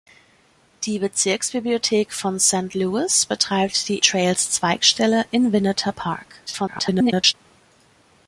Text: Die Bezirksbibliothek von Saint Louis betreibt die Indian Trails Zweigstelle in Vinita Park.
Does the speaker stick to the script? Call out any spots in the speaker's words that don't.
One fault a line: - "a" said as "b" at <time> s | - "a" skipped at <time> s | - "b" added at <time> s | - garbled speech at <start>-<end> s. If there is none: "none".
- "Indian" skipped at 4.0 s
- garbled speech at 6.5-7.3 s